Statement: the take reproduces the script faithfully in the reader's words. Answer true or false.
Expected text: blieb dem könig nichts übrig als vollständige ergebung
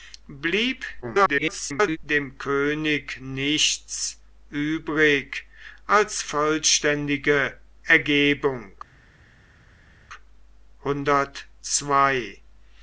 false